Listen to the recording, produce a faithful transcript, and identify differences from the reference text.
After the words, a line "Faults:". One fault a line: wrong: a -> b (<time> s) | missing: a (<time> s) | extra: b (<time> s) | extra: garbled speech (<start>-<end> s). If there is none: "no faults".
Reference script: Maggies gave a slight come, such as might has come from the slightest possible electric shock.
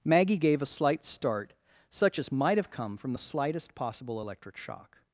Maggie gave a slight start, such as might have come from the slightest possible electric shock.
Faults:
wrong: Maggies -> Maggie (0.0 s)
wrong: come -> start (1.1 s)
wrong: has -> have (2.6 s)